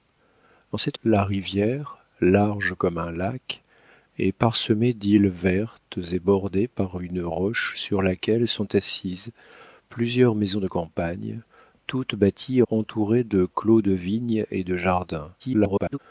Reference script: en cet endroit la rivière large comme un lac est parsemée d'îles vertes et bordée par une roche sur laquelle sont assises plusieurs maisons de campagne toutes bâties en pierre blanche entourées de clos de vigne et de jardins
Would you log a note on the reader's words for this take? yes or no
yes